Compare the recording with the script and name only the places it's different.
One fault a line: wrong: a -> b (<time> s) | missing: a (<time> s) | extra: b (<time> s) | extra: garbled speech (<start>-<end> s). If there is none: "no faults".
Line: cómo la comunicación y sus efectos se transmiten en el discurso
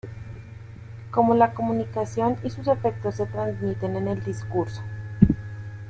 no faults